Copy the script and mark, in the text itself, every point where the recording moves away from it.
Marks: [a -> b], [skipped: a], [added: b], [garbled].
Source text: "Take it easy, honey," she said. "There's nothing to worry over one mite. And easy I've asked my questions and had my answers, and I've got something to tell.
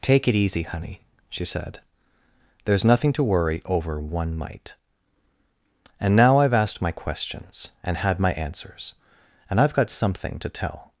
"Take it easy, honey," she said. "There's nothing to worry over one mite. And [easy -> now] I've asked my questions and had my answers, and I've got something to tell.